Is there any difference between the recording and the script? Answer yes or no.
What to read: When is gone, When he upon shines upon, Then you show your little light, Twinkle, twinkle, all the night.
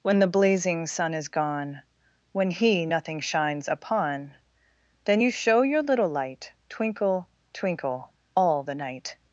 yes